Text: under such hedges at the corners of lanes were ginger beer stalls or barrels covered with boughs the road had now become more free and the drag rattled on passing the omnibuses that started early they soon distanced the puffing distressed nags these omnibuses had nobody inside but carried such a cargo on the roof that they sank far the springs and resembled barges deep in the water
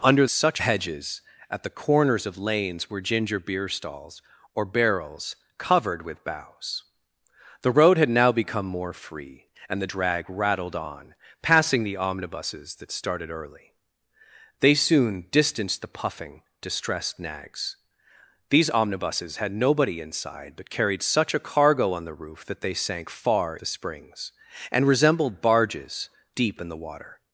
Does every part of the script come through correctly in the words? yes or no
yes